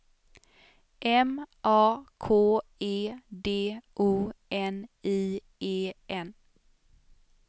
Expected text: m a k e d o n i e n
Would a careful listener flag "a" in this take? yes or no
no